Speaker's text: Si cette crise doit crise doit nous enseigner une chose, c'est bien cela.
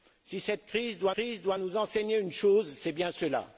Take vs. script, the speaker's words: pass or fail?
pass